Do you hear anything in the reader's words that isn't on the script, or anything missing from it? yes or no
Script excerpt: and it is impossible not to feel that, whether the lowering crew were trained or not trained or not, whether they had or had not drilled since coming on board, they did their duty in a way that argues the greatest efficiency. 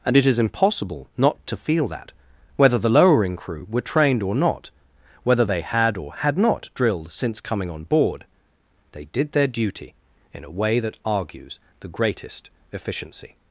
yes